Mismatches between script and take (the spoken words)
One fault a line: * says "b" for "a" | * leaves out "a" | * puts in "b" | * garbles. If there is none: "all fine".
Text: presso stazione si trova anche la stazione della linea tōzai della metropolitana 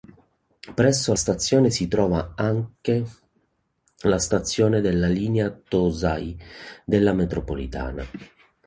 all fine